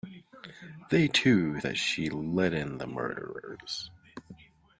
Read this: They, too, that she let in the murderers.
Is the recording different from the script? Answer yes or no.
no